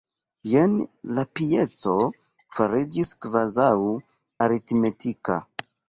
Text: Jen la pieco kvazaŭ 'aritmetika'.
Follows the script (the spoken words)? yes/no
no